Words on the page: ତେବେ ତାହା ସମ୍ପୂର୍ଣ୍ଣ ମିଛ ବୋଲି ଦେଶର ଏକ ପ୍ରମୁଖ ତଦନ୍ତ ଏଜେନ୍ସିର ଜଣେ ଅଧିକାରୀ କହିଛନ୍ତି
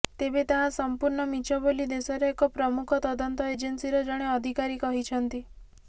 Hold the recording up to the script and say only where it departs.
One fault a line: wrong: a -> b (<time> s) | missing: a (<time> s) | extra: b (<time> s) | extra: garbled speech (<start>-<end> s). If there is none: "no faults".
no faults